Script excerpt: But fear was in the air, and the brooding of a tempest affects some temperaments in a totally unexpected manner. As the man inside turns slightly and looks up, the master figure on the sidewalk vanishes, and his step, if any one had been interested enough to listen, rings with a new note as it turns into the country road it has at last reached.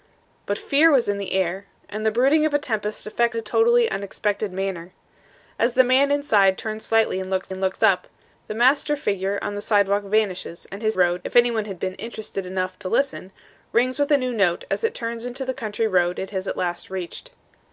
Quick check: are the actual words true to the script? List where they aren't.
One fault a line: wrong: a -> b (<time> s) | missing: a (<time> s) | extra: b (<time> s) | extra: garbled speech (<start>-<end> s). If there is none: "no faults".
missing: some temperaments in (3.4 s)
extra: and looks (7.5 s)
wrong: step -> road (10.9 s)